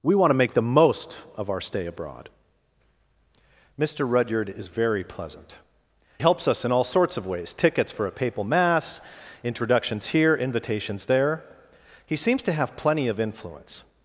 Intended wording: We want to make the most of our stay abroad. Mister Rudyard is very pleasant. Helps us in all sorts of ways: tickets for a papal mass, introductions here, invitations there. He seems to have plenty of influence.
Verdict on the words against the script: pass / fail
pass